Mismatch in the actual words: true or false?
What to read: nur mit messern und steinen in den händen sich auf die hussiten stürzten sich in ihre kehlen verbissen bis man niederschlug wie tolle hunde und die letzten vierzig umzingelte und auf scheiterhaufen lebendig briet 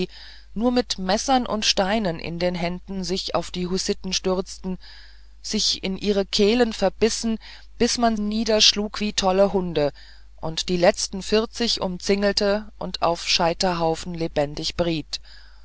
false